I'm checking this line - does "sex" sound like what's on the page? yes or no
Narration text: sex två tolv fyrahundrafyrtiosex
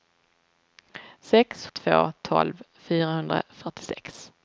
yes